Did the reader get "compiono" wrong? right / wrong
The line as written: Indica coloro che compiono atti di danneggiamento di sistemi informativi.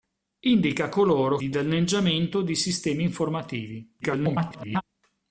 wrong